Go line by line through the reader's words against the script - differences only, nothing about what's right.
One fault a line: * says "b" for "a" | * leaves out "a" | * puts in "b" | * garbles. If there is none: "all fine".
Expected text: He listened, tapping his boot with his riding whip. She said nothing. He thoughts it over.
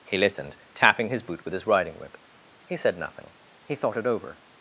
* says "He" for "She"
* says "thought" for "thoughts"